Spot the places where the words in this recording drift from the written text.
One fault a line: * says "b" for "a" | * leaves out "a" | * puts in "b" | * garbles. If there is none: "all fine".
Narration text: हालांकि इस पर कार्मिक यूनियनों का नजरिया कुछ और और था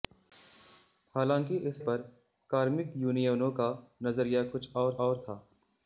all fine